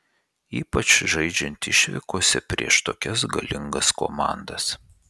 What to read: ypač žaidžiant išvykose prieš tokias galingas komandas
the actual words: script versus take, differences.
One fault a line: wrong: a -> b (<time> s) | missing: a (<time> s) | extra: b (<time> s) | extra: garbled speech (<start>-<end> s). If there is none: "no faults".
no faults